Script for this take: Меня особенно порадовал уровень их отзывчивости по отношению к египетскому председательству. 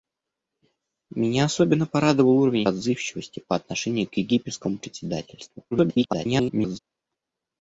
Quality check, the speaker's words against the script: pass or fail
fail